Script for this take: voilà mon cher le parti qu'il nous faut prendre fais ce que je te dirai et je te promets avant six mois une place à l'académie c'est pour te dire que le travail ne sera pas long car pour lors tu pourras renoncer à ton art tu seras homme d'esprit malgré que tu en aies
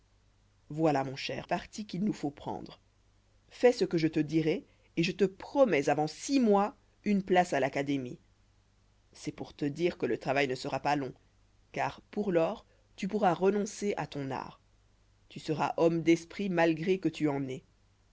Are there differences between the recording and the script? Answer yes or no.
yes